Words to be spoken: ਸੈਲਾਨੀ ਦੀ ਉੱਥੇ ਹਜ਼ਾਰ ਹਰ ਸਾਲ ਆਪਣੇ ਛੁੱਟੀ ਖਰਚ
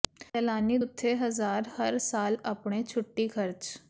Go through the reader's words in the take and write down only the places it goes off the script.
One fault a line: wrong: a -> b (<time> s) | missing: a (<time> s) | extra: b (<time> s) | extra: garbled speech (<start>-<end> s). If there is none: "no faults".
missing: ਦੀ (0.8 s)